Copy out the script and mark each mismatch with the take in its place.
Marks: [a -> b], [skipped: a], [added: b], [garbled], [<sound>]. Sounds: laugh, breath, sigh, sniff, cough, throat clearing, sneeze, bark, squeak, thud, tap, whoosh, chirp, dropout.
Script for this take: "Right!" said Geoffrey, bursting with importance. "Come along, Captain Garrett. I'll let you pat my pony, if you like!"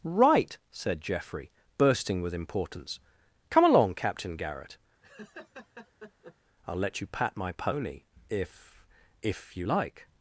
"Right!" said Geoffrey, bursting with importance. "Come along, Captain Garrett. [laugh] I'll let you pat my pony, if [added: if] you like!"